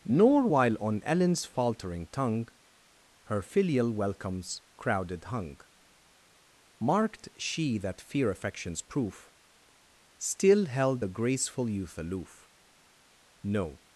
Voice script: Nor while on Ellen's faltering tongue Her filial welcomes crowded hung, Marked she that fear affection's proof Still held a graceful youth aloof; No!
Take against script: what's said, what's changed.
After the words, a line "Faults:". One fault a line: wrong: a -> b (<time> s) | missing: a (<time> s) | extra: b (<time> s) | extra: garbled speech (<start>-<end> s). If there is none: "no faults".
Nor while on Ellen's faltering tongue Her filial welcomes crowded hung, Marked she that fear affection's proof Still held the graceful youth aloof; No!
Faults:
wrong: a -> the (11.0 s)